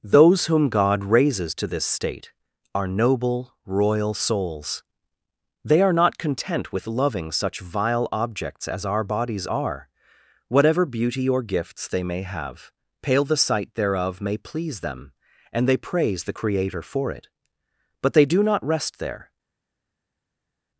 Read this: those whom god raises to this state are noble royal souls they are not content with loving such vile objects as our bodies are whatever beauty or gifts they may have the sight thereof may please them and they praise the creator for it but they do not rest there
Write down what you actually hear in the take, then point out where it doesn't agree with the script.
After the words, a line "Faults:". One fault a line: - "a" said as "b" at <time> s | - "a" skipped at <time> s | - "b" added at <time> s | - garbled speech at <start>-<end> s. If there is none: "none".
those whom god raises to this state are noble royal souls they are not content with loving such vile objects as our bodies are whatever beauty or gifts they may have pale the sight thereof may please them and they praise the creator for it but they do not rest there
Faults:
- "pale" added at 13.0 s